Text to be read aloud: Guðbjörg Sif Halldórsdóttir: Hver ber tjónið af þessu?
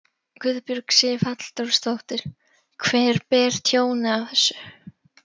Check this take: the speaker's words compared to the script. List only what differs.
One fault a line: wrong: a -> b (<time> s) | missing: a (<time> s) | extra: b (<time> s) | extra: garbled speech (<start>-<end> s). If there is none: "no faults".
no faults